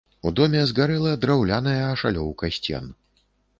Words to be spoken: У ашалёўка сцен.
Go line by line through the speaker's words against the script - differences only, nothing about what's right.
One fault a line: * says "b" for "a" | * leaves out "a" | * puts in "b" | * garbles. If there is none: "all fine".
* puts in "доме згарэла драўляная"